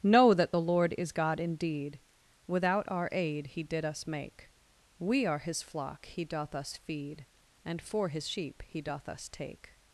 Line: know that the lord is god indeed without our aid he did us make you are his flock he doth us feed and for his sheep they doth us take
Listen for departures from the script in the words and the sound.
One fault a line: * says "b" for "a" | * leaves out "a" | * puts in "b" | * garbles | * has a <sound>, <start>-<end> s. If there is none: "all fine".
* says "we" for "you"
* says "he" for "they"